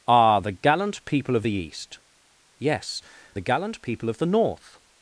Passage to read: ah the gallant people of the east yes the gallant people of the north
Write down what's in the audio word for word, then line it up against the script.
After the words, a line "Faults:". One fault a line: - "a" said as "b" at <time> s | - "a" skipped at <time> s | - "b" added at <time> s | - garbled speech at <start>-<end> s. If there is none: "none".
ah the gallant people of the east yes the gallant people of the north
Faults:
none